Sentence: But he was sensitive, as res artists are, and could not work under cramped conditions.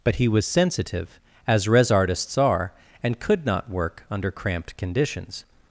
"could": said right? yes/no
yes